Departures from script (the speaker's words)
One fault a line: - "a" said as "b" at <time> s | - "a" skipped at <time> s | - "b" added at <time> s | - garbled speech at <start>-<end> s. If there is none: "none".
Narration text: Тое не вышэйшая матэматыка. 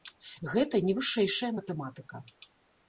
- "Тое" said as "Гэта" at 0.5 s